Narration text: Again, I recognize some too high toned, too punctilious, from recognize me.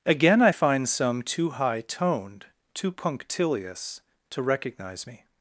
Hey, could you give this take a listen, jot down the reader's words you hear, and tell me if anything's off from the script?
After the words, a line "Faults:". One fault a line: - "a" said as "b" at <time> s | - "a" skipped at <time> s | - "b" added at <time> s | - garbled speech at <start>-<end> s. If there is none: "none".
Again, I find some too high toned, too punctilious, to recognize me.
Faults:
- "recognize" said as "find" at 0.5 s
- "from" said as "to" at 4.3 s